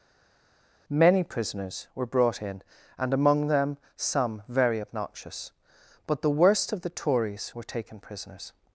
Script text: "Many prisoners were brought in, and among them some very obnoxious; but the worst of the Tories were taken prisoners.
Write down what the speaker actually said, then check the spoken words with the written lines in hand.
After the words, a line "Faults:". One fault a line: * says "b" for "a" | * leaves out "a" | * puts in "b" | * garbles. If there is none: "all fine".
"Many prisoners were brought in, and among them some very obnoxious; but the worst of the Tories were taken prisoners.
Faults:
all fine